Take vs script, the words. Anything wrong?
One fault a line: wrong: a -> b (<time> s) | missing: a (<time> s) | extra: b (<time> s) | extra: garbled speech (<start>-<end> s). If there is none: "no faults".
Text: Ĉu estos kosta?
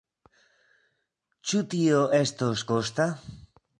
extra: tio (1.7 s)